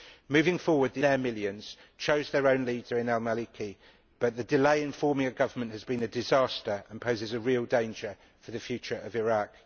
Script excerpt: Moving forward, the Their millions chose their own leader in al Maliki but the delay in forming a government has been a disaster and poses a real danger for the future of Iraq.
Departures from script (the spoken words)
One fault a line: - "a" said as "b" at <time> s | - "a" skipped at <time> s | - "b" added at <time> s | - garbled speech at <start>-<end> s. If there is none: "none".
none